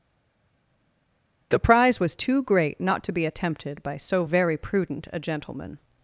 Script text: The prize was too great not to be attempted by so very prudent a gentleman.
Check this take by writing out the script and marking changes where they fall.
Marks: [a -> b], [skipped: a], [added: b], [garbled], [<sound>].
The prize was too great not to be attempted by so very prudent a gentleman.